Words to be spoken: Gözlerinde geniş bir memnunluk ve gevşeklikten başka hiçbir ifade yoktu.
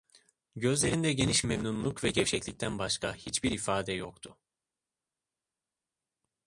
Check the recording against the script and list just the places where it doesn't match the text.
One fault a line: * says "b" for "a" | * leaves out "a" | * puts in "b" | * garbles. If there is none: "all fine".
* leaves out "bir"